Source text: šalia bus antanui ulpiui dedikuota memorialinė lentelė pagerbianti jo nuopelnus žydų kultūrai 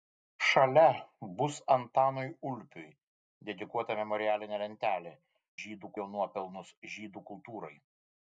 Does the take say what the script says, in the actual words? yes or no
no